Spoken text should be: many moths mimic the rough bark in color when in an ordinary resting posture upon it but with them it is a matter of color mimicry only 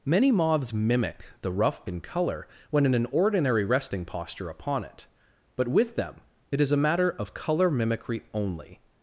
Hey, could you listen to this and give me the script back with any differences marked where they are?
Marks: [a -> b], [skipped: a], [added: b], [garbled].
many moths mimic the rough [skipped: bark] in color when in an ordinary resting posture upon it but with them it is a matter of color mimicry only